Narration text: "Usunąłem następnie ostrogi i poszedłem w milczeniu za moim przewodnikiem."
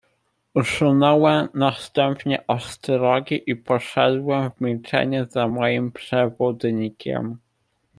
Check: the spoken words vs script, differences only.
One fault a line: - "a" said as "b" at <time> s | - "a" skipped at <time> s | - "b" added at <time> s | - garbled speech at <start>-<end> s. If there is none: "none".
none